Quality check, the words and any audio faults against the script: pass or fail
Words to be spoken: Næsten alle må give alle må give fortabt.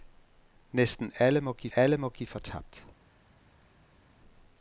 pass